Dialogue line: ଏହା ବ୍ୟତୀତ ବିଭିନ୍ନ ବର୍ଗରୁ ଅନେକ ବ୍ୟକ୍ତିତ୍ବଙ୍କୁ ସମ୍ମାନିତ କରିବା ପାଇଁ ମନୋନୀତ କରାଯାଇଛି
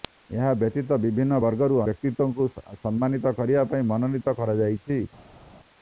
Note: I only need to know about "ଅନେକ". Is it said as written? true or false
false